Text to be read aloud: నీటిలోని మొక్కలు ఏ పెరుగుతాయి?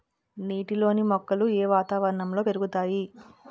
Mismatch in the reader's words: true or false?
true